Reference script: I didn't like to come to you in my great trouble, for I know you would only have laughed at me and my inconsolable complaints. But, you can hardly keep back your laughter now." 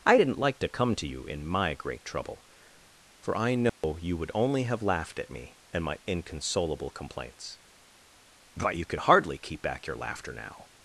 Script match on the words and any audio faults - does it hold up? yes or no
no